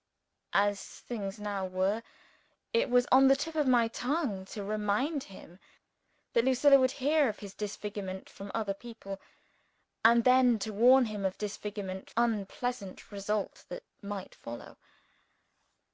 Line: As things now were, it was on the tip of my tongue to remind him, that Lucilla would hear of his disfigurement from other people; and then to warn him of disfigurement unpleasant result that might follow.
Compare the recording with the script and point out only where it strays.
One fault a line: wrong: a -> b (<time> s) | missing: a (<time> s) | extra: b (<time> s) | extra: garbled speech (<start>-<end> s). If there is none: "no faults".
no faults